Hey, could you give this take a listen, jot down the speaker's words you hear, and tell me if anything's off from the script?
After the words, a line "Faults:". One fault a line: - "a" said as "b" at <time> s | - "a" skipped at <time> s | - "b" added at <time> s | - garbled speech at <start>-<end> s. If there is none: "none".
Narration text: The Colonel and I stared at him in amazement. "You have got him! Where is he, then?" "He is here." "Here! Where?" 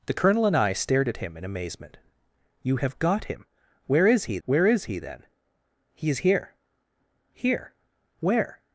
The Colonel and I stared at him in amazement. "You have got him! Where is he where is he, then?" "He is here." "Here! Where?"
Faults:
- "where is he" added at 4.5 s